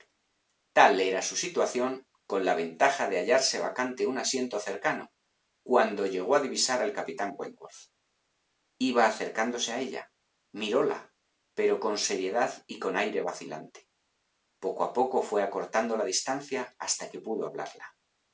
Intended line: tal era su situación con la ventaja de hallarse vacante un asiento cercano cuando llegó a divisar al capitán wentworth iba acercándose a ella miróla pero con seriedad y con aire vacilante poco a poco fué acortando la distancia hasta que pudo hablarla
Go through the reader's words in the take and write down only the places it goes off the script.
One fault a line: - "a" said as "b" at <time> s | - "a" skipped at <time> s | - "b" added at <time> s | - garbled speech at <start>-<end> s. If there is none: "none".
none